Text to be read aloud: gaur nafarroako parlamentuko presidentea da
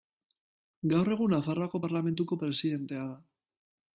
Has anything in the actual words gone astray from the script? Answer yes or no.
yes